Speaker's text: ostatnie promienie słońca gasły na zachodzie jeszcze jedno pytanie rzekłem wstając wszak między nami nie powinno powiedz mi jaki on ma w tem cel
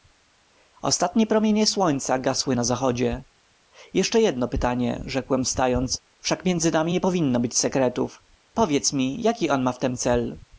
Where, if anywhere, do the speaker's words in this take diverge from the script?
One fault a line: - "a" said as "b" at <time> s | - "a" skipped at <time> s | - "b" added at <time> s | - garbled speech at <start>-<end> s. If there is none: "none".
- "być sekretów" added at 7.4 s